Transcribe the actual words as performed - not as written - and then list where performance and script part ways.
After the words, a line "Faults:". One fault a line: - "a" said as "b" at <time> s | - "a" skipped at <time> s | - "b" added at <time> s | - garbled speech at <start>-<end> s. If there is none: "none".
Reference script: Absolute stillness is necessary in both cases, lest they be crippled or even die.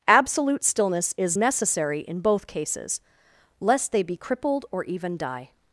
Absolute stillness is necessary in both cases, lest they be crippled or even die.
Faults:
none